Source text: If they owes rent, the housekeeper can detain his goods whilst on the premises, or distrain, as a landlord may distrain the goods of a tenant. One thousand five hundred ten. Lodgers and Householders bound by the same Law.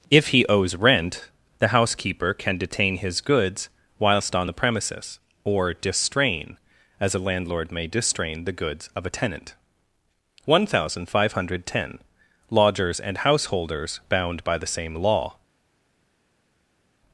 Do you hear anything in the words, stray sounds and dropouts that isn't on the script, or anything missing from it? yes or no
yes